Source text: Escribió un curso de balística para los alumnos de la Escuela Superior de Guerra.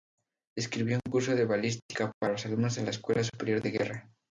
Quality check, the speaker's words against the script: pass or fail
pass